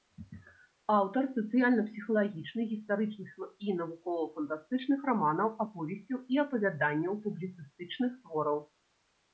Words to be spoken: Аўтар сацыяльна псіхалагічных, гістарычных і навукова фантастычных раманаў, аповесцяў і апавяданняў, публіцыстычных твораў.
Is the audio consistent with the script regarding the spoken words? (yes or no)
yes